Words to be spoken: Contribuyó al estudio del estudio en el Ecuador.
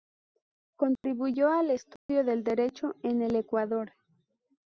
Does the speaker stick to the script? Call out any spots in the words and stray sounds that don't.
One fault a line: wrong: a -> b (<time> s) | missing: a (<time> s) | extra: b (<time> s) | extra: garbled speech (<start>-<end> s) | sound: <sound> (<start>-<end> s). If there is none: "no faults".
sound: dropout (1.0-1.0 s)
sound: dropout (2.0-2.1 s)
wrong: estudio -> derecho (2.4 s)